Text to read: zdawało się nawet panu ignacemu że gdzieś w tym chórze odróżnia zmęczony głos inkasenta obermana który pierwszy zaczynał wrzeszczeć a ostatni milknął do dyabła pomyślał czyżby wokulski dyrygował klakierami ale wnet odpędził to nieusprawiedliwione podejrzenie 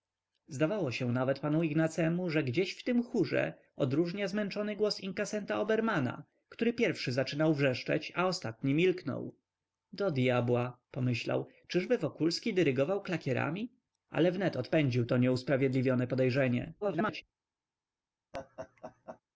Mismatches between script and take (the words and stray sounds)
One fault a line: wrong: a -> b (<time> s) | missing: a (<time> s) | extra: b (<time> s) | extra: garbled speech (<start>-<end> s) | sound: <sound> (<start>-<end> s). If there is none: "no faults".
extra: garbled speech (16.8-17.2 s)
sound: laugh (18.3-19.2 s)